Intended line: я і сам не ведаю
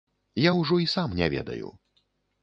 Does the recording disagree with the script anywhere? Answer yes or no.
yes